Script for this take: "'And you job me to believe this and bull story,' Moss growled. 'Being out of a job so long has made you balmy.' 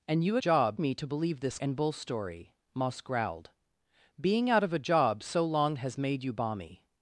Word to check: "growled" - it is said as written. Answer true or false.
true